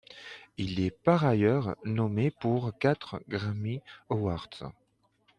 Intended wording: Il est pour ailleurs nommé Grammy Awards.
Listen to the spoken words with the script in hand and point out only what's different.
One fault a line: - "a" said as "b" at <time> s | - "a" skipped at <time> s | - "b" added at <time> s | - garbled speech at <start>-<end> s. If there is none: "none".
- "pour" said as "par" at 0.9 s
- "pour quatre" added at 2.3 s